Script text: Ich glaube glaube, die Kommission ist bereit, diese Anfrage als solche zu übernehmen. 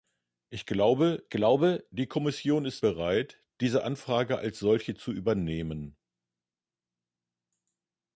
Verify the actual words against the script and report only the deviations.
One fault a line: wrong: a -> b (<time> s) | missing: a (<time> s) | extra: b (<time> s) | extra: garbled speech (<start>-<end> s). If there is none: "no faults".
no faults